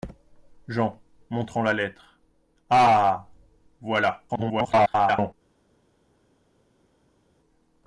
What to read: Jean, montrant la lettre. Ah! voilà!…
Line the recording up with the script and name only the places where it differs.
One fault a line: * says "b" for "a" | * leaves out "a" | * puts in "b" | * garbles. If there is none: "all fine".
* garbles